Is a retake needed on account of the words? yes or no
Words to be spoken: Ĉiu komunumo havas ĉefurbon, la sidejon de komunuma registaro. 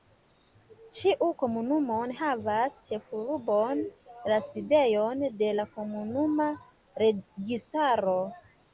yes